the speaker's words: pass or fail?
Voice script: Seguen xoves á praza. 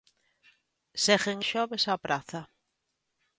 pass